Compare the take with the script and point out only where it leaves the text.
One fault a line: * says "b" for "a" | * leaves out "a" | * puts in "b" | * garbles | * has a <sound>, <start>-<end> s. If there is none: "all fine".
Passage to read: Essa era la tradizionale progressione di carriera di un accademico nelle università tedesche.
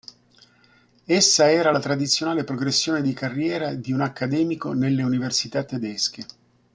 all fine